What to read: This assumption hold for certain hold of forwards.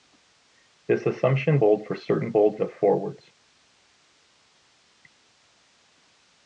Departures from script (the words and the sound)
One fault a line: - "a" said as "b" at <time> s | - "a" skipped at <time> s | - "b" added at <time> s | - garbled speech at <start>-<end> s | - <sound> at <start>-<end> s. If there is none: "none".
none